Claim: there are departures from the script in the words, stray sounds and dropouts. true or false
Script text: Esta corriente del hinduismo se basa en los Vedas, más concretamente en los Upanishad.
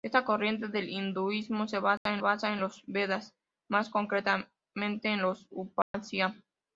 true